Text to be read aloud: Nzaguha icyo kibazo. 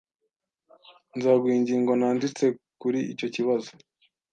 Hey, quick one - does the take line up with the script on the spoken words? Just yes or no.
no